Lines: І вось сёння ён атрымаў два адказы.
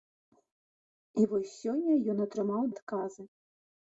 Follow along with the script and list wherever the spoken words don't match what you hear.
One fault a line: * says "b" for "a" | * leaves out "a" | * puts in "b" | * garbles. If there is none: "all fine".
* leaves out "два"